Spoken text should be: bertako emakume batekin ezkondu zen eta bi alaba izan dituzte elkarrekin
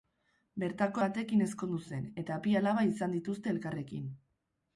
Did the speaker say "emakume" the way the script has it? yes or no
no